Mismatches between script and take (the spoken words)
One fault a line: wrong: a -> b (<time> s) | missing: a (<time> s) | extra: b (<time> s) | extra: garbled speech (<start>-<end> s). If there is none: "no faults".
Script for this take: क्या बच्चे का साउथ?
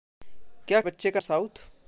no faults